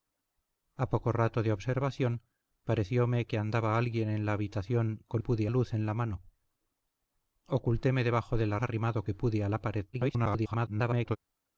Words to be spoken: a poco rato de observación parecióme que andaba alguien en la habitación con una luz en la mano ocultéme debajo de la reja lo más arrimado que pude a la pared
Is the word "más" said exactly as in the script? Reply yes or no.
no